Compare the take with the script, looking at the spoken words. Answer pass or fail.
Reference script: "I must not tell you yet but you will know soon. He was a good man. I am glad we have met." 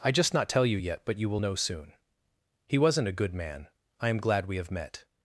fail